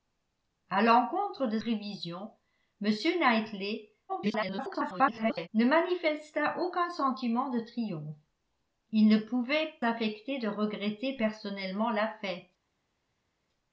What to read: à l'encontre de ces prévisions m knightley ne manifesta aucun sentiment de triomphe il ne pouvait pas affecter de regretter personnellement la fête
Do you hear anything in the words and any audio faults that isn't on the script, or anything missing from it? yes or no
yes